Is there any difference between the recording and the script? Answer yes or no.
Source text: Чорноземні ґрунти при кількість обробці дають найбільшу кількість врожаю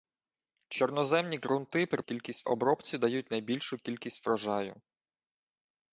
no